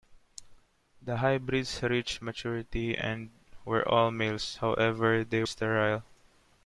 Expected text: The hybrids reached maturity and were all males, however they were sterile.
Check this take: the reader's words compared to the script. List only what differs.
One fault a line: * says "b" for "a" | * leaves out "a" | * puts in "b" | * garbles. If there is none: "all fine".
* leaves out "were"